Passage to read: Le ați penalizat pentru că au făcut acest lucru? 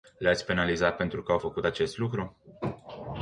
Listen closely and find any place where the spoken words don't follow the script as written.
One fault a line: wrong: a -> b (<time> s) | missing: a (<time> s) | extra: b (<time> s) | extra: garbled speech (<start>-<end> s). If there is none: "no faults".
no faults